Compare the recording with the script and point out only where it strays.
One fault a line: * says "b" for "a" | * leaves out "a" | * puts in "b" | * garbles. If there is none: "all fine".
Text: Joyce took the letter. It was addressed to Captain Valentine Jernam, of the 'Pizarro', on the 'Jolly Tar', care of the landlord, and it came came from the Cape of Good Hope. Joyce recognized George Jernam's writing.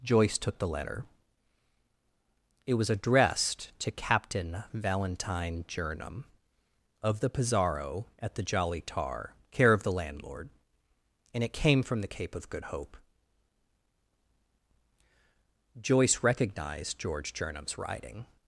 * says "at" for "on"
* leaves out "came"